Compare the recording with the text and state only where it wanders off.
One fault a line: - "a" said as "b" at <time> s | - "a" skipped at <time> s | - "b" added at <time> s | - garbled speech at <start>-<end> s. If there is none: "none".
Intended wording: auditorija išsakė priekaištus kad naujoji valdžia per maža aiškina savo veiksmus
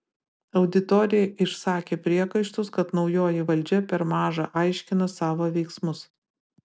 none